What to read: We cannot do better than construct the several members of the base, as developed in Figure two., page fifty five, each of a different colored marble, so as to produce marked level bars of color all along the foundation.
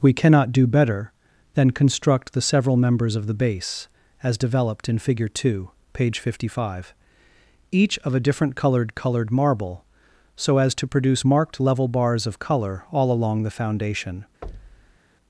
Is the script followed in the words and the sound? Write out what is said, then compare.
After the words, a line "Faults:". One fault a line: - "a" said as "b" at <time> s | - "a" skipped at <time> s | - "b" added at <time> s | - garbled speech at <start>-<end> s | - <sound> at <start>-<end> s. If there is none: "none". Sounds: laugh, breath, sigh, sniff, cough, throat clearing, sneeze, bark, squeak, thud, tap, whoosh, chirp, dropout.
We cannot do better than construct the several members of the base, as developed in Figure two., page fifty five, each of a different colored colored marble, so as to produce marked level bars of color all along the foundation.
Faults:
- "colored" added at 8.9 s
- thud at 14.4-15.0 s